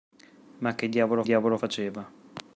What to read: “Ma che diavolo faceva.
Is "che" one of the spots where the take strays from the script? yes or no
no